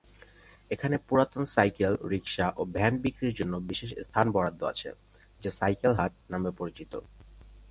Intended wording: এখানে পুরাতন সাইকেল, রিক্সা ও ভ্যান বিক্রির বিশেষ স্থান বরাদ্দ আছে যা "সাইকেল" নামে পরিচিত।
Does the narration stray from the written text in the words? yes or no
yes